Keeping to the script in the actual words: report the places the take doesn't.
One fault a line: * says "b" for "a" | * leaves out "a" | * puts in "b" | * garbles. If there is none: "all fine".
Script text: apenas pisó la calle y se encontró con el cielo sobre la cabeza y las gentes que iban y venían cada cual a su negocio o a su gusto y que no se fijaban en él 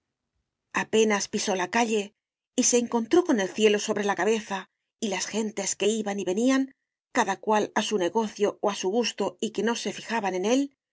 all fine